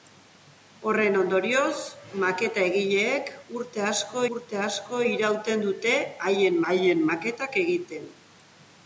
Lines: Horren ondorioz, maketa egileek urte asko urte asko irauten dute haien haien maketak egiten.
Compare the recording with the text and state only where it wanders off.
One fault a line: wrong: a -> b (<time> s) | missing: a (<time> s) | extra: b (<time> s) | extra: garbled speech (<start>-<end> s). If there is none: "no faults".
no faults